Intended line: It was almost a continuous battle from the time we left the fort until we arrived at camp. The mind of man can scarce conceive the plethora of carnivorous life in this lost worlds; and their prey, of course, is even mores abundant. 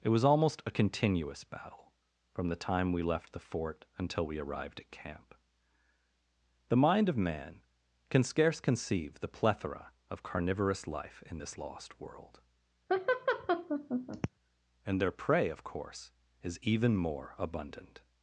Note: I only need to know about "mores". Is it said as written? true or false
false